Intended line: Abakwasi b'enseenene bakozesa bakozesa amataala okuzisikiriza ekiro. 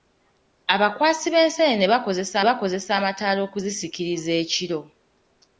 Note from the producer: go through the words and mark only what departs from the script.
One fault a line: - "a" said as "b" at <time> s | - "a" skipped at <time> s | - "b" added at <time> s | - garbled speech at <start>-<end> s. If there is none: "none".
none